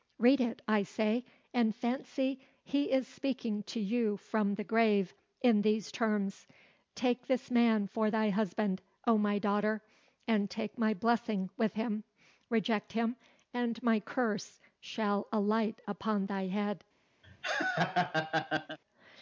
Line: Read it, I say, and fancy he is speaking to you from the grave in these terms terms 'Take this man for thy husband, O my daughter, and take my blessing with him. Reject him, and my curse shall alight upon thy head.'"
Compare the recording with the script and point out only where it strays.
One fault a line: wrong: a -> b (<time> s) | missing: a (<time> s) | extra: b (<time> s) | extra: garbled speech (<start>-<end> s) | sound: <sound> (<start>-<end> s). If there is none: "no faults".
missing: terms (6.5 s)
sound: laugh (17.2-18.8 s)